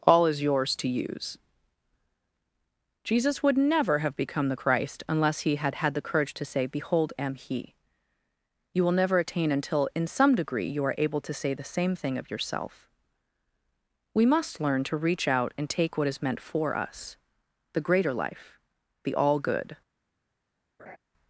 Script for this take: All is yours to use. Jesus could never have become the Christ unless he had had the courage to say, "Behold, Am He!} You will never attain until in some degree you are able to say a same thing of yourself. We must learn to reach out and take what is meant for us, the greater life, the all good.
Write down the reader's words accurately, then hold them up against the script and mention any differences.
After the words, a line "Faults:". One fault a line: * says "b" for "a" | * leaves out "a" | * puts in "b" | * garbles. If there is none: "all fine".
All is yours to use. Jesus would never have become the Christ unless he had had the courage to say, "Behold, Am He!} You will never attain until in some degree you are able to say the same thing of yourself. We must learn to reach out and take what is meant for us, the greater life, the all good.
Faults:
* says "would" for "could"
* says "the" for "a"